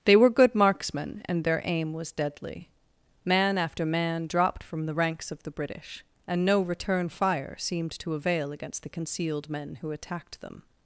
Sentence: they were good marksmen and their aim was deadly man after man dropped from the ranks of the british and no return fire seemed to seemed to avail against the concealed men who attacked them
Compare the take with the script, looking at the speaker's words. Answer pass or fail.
fail